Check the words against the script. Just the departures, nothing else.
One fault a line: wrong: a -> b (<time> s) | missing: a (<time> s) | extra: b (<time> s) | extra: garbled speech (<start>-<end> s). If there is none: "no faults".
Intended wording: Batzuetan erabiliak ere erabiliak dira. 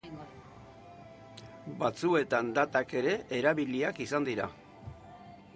wrong: erabiliak -> datak (2.6 s)
extra: izan (4.1 s)